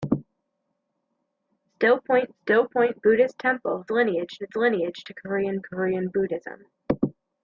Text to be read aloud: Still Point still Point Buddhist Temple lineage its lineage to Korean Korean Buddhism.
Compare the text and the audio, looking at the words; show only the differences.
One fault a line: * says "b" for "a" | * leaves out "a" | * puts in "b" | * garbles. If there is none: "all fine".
all fine